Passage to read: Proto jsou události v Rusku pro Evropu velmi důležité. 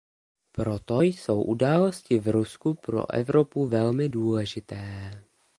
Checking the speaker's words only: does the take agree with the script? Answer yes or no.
yes